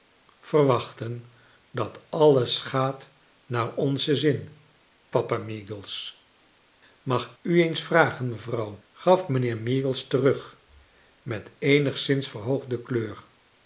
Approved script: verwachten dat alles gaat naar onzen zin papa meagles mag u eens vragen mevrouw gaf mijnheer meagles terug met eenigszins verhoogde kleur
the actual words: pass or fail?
pass